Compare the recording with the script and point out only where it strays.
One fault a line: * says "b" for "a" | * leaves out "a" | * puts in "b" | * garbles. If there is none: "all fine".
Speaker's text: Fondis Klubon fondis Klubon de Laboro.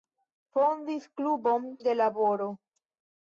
* leaves out "fondis Klubon"